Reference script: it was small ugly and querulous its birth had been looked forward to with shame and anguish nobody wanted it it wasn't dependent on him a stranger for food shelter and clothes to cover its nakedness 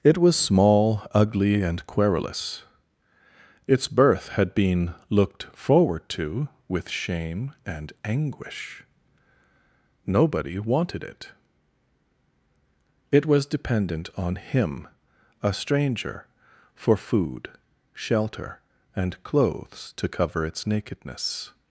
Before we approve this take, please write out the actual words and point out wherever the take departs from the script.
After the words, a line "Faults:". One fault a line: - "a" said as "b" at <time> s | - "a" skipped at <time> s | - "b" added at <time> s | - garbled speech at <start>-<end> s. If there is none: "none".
it was small ugly and querulous its birth had been looked forward to with shame and anguish nobody wanted it it was dependent on him a stranger for food shelter and clothes to cover its nakedness
Faults:
- "wasn't" said as "was" at 13.3 s